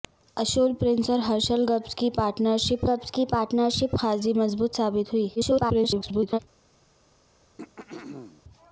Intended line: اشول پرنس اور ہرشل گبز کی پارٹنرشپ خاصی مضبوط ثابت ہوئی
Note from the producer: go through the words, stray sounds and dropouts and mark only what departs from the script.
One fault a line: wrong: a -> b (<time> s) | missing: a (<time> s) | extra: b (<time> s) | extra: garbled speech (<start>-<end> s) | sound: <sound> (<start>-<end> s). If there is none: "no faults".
extra: گبز کی پارٹنرشپ (2.9 s)
extra: garbled speech (5.4-6.4 s)
sound: throat clearing (7.6-8.4 s)